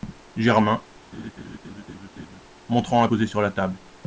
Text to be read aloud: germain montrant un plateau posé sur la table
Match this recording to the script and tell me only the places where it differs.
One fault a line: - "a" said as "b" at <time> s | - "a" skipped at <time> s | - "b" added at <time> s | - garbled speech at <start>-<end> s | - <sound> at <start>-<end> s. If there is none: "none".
- laugh at 1.1-2.4 s
- "plateau" skipped at 3.1 s